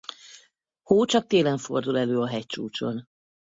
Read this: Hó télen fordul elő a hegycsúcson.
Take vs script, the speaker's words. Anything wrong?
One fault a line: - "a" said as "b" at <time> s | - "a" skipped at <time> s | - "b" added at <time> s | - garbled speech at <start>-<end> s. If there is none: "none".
- "csak" added at 1.0 s